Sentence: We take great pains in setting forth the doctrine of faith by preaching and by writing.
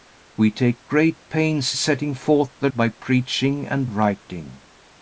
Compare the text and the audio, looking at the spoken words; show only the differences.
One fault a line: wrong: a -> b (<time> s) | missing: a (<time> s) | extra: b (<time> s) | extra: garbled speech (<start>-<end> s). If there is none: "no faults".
missing: in (1.8 s)
missing: doctrine of faith (2.7 s)
missing: by (3.9 s)